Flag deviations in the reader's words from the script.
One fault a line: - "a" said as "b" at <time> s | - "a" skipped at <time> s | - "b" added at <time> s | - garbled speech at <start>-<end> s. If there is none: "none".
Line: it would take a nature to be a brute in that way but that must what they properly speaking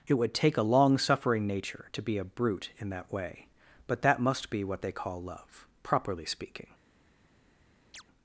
- "long suffering" added at 0.6 s
- "be" added at 4.5 s
- "call love" added at 4.9 s